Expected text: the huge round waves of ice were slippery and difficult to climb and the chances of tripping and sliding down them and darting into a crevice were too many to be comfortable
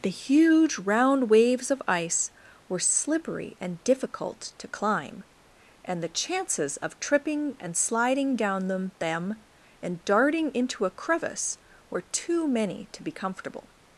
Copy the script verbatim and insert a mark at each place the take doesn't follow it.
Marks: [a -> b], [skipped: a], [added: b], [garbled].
the huge round waves of ice were slippery and difficult to climb and the chances of tripping and sliding down them [added: them] and darting into a crevice were too many to be comfortable